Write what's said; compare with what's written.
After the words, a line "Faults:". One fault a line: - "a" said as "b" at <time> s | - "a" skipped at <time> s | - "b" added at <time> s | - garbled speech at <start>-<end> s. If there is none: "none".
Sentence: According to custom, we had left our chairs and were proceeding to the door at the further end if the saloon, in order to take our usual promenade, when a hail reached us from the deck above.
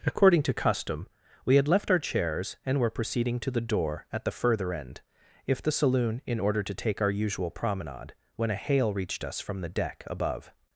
According to custom, we had left our chairs and were proceeding to the door at the further end if the saloon, in order to take our usual promenade, when a hail reached us from the deck above.
Faults:
none